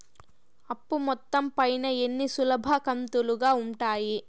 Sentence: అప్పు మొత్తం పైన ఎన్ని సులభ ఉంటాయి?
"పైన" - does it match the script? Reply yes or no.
yes